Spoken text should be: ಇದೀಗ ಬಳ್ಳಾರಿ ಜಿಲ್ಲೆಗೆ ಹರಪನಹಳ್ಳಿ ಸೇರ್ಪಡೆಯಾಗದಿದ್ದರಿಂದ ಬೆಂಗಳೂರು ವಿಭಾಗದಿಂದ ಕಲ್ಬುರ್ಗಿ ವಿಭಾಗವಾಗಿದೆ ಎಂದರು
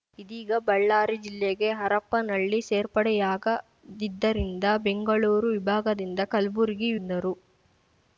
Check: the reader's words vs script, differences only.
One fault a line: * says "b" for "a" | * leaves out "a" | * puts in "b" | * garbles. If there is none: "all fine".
* leaves out "ವಿಭಾಗವಾಗಿದೆ"